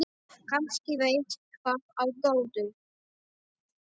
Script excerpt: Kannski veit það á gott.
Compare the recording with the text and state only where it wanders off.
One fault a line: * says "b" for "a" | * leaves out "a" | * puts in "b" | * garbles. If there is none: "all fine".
all fine